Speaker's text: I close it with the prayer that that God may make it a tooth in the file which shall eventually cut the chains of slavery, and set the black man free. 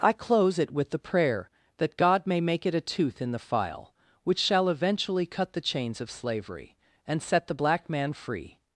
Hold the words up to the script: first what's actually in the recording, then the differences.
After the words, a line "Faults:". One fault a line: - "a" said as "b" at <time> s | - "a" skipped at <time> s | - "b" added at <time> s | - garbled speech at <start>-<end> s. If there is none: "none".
I close it with the prayer that God may make it a tooth in the file which shall eventually cut the chains of slavery, and set the black man free.
Faults:
- "that" skipped at 1.9 s